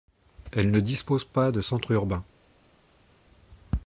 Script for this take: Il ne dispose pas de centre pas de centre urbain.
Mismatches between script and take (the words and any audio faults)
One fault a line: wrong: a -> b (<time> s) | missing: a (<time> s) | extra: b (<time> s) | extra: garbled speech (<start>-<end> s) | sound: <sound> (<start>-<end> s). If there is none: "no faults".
wrong: Il -> Elle (0.5 s)
missing: pas de centre (1.9 s)